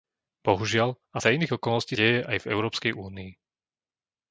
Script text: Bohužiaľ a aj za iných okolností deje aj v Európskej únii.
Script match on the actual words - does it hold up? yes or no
yes